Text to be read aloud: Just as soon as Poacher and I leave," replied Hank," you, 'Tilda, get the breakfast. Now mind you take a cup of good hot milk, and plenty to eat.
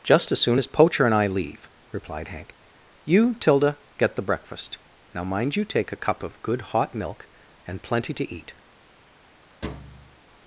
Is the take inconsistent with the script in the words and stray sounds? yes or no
yes